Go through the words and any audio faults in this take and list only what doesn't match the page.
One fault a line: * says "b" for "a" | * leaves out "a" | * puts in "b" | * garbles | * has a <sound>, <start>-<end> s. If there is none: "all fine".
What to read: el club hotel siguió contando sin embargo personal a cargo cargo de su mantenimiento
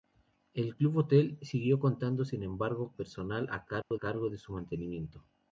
* has a dropout, 3.8-3.9 s